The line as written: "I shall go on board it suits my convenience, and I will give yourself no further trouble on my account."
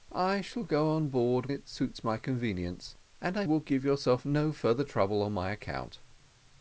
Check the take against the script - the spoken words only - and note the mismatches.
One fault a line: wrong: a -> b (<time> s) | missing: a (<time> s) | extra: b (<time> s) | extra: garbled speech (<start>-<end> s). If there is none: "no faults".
no faults